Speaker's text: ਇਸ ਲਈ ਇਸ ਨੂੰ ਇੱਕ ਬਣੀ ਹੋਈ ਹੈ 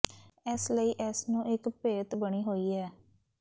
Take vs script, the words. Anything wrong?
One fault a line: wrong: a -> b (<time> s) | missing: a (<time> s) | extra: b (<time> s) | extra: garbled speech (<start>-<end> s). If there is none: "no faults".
extra: ਭੇਤ (1.8 s)